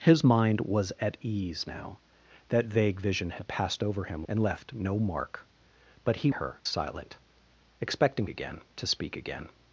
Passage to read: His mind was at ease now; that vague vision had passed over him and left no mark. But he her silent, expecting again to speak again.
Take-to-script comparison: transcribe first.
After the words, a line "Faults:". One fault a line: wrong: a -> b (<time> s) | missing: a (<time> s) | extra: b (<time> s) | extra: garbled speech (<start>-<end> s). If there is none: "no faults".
His mind was at ease now; that vague vision had passed over him and left no mark. But he her silent, expecting again to speak again.
Faults:
no faults